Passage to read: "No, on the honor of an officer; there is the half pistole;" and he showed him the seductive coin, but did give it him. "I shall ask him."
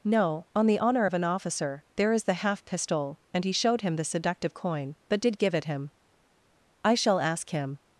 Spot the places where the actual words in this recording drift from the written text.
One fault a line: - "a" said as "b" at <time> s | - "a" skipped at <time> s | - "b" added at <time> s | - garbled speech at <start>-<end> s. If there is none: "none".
none